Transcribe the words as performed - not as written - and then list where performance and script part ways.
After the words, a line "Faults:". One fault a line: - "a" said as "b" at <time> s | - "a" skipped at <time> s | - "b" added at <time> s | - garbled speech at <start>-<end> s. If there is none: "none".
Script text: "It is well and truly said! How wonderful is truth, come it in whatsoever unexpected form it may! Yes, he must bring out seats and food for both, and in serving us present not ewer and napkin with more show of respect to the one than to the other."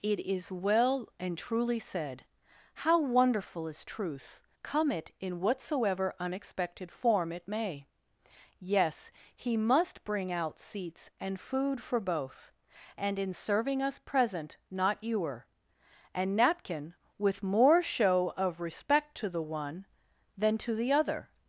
"It is well and truly said! How wonderful is truth, come it in whatsoever unexpected form it may! Yes, he must bring out seats and food for both, and in serving us present not ewer and napkin with more show of respect to the one than to the other."
Faults:
none